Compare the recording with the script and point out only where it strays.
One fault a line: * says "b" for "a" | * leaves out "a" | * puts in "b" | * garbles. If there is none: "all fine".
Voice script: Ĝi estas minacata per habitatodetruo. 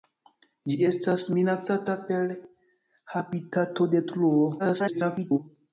* garbles